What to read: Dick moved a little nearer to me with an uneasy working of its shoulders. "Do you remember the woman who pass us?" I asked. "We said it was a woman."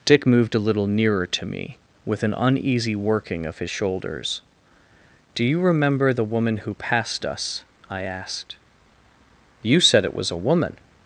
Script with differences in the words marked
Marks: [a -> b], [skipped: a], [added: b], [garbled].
Dick moved a little nearer to me with an uneasy working of [its -> his] shoulders. "Do you remember the woman who [pass -> passed] us?" I asked. ["We -> You] said it was a woman."